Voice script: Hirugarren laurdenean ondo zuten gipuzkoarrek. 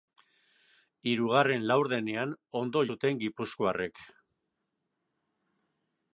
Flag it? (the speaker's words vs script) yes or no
no